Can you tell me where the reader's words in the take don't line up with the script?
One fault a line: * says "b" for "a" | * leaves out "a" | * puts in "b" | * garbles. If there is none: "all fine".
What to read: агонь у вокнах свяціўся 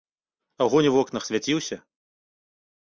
all fine